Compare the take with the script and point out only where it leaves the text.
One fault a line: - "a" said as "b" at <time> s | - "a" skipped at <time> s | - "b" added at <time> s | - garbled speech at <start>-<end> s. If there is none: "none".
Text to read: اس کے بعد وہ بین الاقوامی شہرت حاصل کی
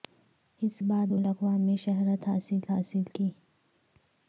- "کے" skipped at 0.8 s
- "بین" skipped at 1.2 s
- "حاصل" added at 2.7 s